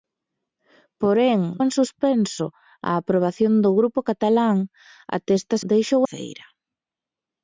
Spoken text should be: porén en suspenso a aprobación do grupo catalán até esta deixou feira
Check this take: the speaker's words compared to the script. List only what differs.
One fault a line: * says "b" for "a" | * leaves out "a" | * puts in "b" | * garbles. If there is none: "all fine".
all fine